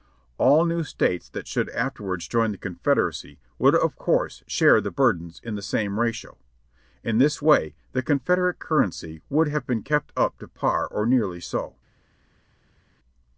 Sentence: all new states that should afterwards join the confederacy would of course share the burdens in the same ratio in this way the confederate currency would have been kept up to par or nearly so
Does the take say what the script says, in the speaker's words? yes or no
yes